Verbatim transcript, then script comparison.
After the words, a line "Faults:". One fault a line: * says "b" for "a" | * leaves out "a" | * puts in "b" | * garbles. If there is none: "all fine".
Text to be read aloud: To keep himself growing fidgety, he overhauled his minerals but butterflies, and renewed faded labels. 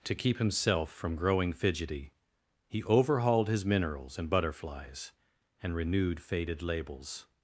To keep himself from growing fidgety, he overhauled his minerals and butterflies, and renewed faded labels.
Faults:
* puts in "from"
* says "and" for "but"